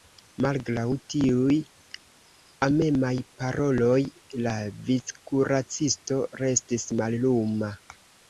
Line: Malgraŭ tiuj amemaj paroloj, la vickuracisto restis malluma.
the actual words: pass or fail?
pass